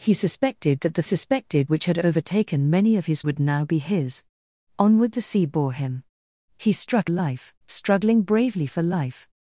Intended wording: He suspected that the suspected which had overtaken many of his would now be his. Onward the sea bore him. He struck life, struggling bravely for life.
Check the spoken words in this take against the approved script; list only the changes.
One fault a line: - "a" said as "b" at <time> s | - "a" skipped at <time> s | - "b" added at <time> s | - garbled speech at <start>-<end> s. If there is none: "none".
none